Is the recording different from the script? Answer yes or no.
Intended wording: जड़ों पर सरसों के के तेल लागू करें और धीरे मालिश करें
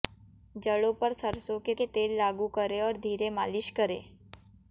no